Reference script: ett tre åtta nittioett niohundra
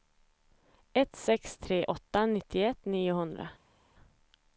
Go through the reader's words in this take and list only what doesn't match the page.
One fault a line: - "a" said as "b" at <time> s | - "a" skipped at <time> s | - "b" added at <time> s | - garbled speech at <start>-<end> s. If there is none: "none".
- "sex" added at 1.1 s